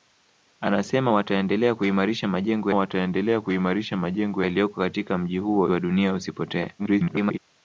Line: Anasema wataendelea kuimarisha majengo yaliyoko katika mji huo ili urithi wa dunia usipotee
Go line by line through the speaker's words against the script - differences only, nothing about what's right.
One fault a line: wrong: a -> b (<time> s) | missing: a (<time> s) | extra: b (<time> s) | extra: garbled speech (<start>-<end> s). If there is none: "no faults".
extra: wataendelea kuimarisha majengo (2.7 s)
missing: ili urithi (5.7 s)
extra: garbled speech (6.8-7.4 s)